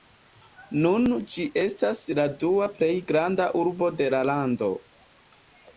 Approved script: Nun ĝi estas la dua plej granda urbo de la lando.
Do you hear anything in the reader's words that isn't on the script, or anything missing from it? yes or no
no